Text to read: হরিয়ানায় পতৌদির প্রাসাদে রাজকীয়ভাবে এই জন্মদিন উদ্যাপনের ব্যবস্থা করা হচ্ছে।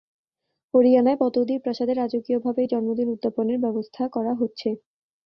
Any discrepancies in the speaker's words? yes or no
no